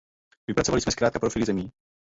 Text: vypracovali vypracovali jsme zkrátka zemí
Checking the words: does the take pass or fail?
fail